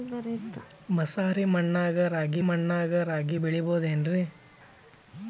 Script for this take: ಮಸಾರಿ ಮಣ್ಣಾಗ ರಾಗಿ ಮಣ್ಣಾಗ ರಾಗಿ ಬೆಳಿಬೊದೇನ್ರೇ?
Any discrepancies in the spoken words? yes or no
no